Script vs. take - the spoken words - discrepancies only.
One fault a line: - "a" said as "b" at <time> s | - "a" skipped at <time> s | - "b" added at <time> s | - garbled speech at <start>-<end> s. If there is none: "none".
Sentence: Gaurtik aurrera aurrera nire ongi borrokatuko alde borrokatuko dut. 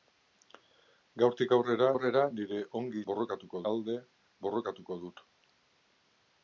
none